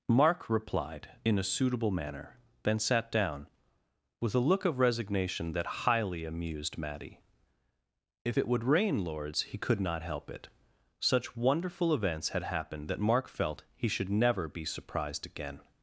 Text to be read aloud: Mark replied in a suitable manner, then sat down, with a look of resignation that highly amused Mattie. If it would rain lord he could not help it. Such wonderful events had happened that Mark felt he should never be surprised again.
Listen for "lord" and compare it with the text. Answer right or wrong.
wrong